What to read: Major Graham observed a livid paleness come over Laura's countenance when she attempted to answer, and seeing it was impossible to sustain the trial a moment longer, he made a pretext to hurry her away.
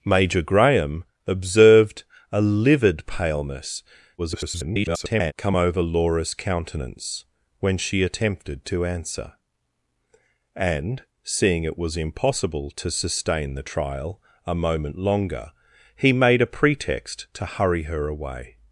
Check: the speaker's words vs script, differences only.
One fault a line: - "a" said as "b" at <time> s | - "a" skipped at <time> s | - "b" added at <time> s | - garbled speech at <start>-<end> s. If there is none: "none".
- garbled speech at 4.2-5.3 s